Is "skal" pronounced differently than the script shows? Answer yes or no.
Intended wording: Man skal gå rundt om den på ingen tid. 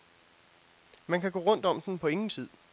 yes